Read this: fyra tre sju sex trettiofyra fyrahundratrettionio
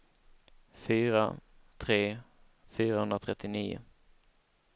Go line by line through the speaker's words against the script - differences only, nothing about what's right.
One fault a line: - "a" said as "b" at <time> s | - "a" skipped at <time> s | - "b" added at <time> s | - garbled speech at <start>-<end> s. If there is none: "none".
- "sju sex trettiofyra" skipped at 2.2 s